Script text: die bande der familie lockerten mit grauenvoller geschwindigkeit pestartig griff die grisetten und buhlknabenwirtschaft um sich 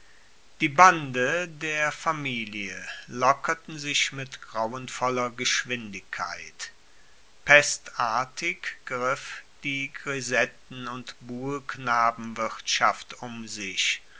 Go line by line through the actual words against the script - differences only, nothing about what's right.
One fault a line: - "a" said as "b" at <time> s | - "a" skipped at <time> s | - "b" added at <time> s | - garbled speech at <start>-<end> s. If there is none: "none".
- "sich" added at 3.8 s